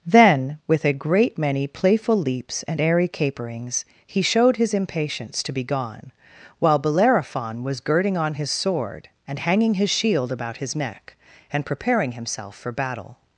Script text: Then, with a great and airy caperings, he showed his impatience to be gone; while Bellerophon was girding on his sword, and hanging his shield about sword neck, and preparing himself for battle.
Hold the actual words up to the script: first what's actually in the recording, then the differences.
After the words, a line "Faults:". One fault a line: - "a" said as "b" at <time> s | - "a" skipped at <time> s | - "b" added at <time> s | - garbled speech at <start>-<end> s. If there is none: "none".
Then, with a great many playful leaps and airy caperings, he showed his impatience to be gone; while Bellerophon was girding on his sword, and hanging his shield about his neck, and preparing himself for battle.
Faults:
- "many playful leaps" added at 1.4 s
- "sword" said as "his" at 10.6 s